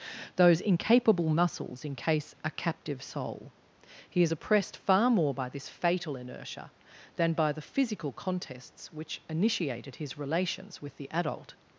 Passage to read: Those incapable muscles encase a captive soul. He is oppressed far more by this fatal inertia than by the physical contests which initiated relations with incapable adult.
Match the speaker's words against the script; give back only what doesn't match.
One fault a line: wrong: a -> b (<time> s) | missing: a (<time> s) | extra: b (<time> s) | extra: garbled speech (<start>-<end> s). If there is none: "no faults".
extra: his (10.0 s)
wrong: incapable -> the (11.0 s)